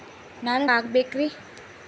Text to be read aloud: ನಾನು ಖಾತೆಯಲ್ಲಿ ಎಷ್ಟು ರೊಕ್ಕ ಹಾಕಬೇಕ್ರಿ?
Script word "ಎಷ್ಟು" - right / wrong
wrong